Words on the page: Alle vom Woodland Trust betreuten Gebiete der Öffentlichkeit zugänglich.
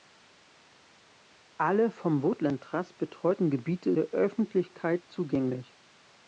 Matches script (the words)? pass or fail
pass